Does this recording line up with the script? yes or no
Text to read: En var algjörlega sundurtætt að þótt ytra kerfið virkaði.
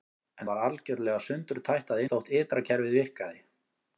yes